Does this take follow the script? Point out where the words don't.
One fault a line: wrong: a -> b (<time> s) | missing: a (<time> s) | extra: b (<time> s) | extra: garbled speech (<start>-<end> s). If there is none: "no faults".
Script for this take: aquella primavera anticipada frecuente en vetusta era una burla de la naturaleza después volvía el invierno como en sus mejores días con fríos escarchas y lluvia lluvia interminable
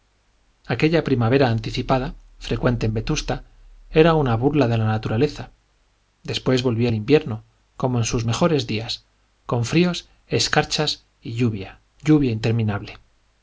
no faults